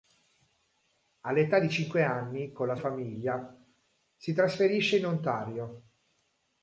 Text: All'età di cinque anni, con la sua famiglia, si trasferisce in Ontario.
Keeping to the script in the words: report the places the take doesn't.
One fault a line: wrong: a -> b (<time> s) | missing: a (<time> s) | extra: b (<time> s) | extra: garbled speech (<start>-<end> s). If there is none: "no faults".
missing: sua (2.8 s)